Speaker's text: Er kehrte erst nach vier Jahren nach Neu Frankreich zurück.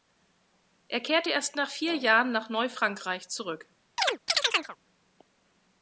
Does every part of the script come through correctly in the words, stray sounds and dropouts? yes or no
no